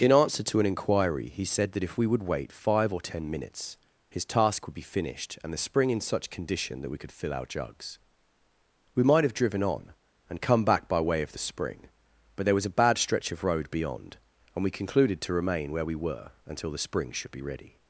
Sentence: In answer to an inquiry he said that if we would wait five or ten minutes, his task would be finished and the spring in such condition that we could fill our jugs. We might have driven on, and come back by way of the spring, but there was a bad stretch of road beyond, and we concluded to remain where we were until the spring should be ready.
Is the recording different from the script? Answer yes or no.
no